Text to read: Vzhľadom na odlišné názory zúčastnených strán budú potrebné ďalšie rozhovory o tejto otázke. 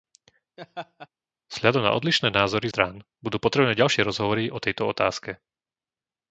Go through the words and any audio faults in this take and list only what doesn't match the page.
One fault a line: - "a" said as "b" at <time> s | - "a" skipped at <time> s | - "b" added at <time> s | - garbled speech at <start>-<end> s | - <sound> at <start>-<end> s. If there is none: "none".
- laugh at 0.6-1.1 s
- "zúčastnených" skipped at 2.7 s